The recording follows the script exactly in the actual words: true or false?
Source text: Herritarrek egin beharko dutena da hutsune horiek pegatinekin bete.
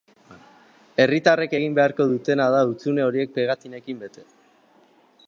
true